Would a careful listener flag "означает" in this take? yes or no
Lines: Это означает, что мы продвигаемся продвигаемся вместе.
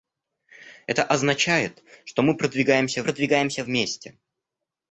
no